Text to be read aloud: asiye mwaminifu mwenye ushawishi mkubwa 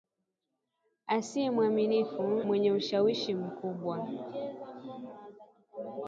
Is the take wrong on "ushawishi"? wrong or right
right